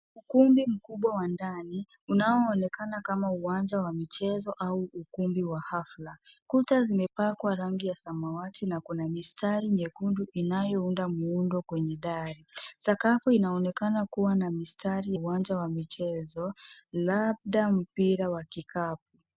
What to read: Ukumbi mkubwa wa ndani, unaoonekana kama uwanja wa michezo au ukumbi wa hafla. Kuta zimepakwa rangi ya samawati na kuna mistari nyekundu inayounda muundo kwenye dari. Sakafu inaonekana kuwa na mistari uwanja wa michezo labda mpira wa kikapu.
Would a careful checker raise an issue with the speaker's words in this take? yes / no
no